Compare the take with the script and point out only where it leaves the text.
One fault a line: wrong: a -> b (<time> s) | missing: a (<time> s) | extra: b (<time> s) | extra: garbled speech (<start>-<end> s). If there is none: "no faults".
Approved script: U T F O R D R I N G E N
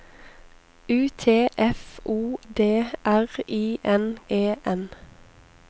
missing: R (2.4 s)
missing: G (4.2 s)